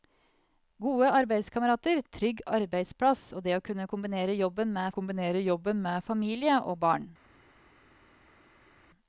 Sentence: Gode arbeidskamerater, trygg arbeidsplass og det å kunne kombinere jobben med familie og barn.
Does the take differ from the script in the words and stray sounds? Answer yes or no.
yes